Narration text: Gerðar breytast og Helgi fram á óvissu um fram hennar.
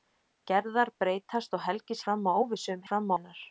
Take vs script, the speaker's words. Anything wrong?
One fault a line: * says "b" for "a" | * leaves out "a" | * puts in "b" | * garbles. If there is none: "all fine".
all fine